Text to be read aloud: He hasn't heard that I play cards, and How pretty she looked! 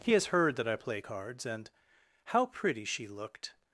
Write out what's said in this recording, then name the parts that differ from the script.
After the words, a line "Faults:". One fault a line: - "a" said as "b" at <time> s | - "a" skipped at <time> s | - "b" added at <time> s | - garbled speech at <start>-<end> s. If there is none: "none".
He has heard that I play cards, and How pretty she looked!
Faults:
- "hasn't" said as "has" at 0.1 s